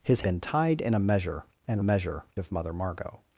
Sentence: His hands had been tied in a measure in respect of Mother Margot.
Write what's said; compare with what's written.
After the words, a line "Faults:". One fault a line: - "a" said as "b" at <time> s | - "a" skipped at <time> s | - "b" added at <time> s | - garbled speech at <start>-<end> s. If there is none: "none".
His been tied in a measure in measure of Mother Margot.
Faults:
- "hands had" skipped at 0.2 s
- "respect" said as "measure" at 1.8 s